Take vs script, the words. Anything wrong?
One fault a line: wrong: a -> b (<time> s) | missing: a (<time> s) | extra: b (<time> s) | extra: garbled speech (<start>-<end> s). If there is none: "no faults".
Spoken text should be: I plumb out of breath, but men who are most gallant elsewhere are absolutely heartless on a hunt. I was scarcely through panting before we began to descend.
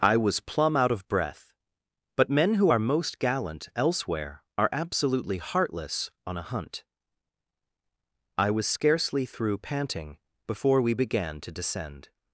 extra: was (0.2 s)